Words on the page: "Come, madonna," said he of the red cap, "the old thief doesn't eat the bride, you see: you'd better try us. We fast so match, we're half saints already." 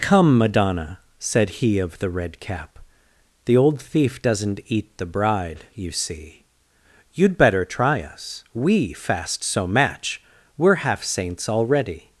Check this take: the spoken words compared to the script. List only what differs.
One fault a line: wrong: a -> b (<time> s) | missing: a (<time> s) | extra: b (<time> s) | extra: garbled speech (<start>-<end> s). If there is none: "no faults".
no faults